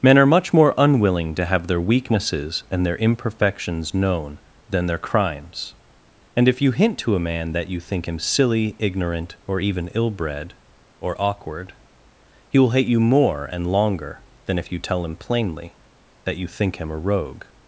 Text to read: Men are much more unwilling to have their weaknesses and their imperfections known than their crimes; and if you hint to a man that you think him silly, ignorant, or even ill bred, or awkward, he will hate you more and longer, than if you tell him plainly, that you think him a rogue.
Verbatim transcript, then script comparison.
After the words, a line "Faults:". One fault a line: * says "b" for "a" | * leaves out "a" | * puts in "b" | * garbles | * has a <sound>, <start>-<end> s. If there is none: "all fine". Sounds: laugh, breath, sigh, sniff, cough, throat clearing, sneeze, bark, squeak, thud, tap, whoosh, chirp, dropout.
Men are much more unwilling to have their weaknesses and their imperfections known than their crimes; and if you hint to a man that you think him silly, ignorant, or even ill bred, or awkward, he will hate you more and longer, than if you tell him plainly, that you think him a rogue.
Faults:
all fine